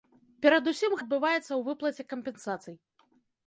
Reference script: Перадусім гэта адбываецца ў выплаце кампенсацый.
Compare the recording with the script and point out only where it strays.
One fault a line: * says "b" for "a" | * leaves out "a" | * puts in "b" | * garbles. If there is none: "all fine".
* leaves out "гэта"